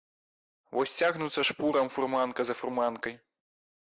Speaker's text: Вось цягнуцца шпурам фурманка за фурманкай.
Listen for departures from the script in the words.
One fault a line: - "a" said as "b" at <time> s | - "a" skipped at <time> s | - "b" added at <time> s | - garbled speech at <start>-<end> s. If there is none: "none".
none